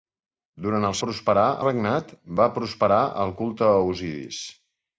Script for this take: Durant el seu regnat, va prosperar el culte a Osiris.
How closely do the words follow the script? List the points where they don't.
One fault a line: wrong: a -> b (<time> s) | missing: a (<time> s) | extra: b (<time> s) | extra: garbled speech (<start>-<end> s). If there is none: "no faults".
wrong: seu -> prosperar (1.0 s)